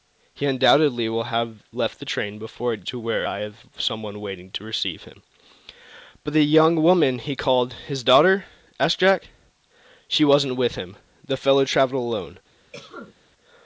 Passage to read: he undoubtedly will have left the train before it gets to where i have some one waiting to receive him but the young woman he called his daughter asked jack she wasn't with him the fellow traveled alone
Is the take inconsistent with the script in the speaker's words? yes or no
yes